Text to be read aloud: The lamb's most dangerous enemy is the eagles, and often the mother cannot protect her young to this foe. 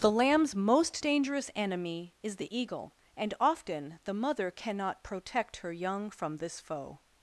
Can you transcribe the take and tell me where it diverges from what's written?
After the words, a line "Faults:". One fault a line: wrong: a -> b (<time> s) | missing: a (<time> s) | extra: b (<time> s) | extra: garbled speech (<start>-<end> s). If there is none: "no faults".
The lamb's most dangerous enemy is the eagle, and often the mother cannot protect her young from this foe.
Faults:
wrong: eagles -> eagle (2.6 s)
wrong: to -> from (6.1 s)